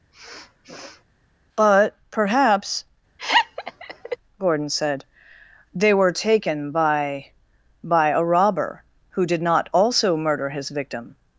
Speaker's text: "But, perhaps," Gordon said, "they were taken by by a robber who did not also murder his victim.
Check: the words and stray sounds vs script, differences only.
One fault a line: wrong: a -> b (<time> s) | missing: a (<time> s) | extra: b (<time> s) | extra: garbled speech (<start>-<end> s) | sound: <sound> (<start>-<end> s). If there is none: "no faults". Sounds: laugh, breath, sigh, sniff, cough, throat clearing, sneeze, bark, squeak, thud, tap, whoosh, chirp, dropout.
sound: sniff (0.1-1.0 s)
sound: laugh (3.2-4.2 s)